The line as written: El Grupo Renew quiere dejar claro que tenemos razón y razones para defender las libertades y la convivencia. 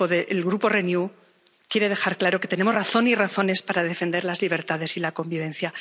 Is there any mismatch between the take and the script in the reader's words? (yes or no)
no